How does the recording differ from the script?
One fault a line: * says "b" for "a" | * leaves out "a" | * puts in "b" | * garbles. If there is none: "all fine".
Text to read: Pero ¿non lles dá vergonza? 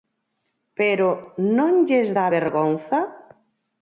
all fine